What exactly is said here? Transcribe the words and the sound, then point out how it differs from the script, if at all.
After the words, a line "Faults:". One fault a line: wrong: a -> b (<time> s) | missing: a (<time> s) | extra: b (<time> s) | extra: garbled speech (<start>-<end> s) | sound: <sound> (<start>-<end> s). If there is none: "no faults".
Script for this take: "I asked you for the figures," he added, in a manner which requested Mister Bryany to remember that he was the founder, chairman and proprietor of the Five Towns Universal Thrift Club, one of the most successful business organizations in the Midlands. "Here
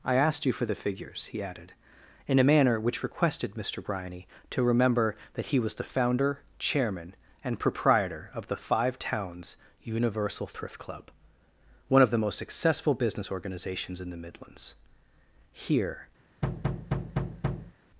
"I asked you for the figures," he added, in a manner which requested Mister Bryany to remember that he was the founder, chairman and proprietor of the Five Towns Universal Thrift Club, one of the most successful business organizations in the Midlands. "Here
Faults:
sound: thud (16.4-17.7 s)